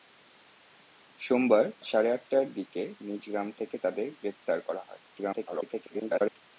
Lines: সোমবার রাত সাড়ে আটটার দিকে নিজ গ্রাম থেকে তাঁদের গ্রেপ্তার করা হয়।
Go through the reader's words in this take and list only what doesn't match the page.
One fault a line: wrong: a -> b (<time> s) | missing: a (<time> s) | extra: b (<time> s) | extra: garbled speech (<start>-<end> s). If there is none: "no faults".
missing: রাত (1.6 s)
extra: garbled speech (5.1-6.4 s)